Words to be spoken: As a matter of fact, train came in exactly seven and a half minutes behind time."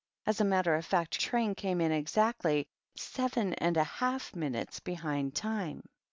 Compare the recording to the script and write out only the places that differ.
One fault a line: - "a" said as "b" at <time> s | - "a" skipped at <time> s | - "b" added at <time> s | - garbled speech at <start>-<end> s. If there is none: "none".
none